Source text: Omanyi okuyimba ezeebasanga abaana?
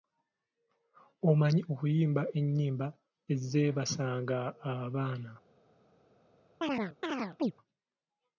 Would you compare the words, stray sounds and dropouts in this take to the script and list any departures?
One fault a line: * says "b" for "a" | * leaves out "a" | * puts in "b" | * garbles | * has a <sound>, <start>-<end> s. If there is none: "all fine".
* puts in "ennyimba"
* has a chirp, 6.6-7.5 s